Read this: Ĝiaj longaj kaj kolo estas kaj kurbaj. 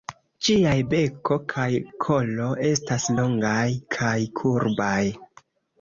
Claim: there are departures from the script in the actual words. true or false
true